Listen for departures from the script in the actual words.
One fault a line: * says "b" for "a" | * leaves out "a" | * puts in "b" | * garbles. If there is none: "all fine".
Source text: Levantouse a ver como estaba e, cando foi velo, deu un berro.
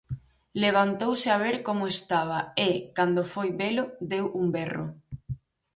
all fine